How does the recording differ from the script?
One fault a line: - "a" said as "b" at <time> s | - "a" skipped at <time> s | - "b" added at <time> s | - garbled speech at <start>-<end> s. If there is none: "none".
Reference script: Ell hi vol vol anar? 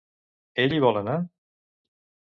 - "vol" skipped at 1.0 s